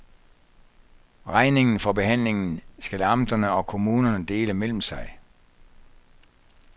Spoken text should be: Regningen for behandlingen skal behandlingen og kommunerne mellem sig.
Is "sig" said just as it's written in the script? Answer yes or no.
yes